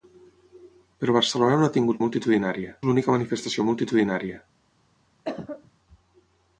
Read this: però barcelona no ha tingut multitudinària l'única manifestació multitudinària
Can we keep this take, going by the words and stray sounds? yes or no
no